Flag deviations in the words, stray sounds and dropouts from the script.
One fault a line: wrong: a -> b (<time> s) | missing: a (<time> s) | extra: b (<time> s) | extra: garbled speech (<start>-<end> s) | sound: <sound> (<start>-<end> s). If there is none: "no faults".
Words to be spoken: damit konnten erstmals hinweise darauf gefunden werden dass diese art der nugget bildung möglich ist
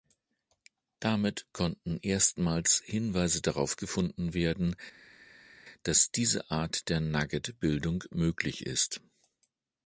no faults